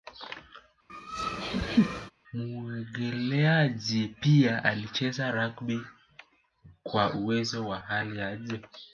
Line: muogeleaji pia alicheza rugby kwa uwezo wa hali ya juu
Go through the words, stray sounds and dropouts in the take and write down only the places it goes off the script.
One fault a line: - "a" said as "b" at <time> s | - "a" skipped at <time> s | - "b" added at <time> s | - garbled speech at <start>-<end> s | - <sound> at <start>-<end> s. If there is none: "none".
- laugh at 0.9-2.1 s